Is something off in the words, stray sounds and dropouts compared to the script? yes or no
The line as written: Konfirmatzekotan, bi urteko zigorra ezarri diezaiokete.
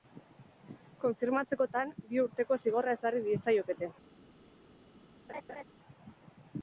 yes